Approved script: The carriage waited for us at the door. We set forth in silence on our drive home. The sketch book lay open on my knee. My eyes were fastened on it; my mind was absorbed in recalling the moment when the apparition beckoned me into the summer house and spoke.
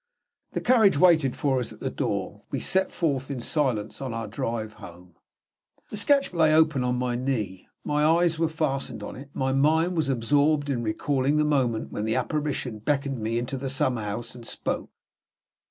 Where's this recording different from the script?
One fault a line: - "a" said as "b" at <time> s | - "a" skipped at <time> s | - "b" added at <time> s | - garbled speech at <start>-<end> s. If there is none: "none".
- "book" skipped at 6.3 s